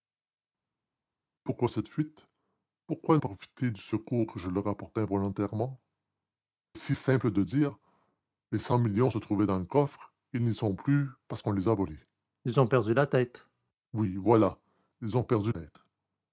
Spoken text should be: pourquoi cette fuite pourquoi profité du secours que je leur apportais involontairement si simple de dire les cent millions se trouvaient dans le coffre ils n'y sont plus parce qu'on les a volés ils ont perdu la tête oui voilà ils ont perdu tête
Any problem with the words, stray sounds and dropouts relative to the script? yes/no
no